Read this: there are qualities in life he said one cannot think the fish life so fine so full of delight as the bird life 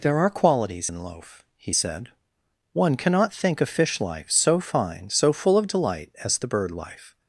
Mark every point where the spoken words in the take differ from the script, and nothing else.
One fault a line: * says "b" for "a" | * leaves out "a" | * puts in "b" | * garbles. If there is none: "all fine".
* says "loaf" for "life"
* says "a" for "the"